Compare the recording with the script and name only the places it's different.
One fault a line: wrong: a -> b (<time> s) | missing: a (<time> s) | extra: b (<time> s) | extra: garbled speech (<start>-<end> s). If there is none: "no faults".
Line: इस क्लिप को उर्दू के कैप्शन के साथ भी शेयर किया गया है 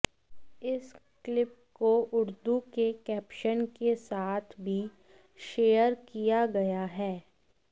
no faults